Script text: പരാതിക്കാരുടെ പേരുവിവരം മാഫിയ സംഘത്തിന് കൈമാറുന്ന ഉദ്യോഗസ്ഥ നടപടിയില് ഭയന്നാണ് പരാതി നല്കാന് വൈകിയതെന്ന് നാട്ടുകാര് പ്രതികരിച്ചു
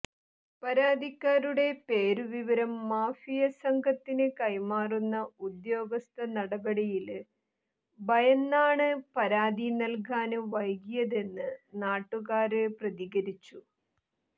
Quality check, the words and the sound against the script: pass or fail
pass